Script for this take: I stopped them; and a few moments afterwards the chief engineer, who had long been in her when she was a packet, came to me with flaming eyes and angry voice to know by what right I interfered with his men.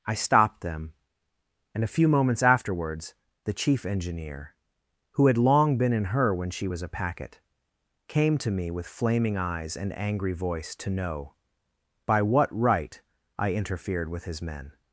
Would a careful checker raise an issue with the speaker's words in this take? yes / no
no